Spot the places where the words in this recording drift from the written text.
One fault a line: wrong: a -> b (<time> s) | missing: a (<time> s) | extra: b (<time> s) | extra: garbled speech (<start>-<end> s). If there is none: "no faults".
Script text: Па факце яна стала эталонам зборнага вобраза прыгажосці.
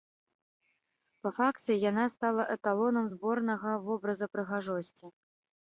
no faults